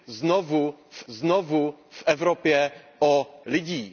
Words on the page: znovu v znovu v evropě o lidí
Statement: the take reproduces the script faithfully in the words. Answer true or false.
true